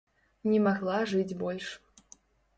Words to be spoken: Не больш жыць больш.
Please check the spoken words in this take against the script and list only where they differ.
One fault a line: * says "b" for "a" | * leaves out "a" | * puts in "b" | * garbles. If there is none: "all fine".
* says "магла" for "больш"